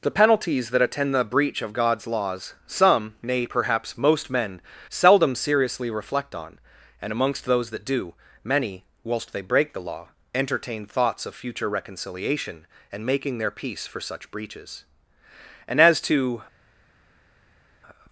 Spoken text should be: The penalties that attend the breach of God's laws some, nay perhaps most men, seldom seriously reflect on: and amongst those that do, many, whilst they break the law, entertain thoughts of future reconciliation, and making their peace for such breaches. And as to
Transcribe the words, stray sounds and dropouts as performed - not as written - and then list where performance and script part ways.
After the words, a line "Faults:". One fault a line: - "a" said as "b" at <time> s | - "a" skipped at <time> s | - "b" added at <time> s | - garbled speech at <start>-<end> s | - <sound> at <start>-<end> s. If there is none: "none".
The penalties that attend the breach of God's laws some, nay perhaps most men, seldom seriously reflect on: and amongst those that do, many, whilst they break the law, entertain thoughts of future reconciliation, and making their peace for such breaches. And as to
Faults:
none